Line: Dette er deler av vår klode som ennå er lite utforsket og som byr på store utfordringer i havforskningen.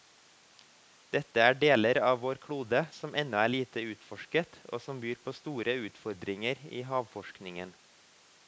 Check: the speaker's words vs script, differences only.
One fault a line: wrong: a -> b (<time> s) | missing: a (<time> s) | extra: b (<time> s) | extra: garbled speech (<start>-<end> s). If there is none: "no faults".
no faults